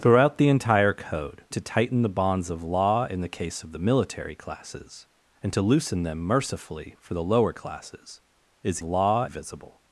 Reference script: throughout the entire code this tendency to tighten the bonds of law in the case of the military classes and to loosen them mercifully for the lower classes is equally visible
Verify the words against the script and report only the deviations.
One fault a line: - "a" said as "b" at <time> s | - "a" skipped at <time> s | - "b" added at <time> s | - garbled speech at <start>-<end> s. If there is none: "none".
- "this tendency" skipped at 1.4 s
- "equally" said as "law" at 8.8 s